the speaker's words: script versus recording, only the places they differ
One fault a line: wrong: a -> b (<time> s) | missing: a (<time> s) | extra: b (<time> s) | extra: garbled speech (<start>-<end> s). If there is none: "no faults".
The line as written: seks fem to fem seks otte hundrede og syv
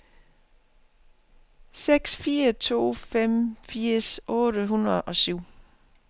wrong: fem -> fire (2.1 s)
wrong: seks -> firs (3.6 s)